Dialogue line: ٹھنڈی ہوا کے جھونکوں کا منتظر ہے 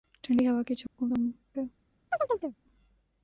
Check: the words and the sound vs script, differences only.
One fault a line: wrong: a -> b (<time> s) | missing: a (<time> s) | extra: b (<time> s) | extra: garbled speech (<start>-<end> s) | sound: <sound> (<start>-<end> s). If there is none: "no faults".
sound: dropout (0.9-1.0 s)
missing: منتظر (1.2 s)
sound: chirp (2.1-2.6 s)